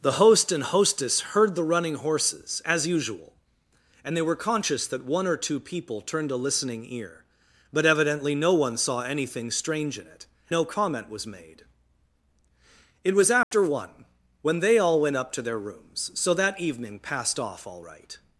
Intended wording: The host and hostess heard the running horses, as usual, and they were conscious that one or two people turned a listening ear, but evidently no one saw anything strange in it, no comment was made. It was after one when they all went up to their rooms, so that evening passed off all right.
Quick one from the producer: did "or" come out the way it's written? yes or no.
yes